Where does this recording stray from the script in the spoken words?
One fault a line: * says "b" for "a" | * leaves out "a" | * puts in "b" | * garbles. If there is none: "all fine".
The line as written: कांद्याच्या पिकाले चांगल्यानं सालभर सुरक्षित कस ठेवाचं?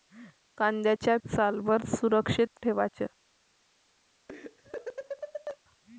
* leaves out "पिकाले चांगल्यानं"
* leaves out "कस"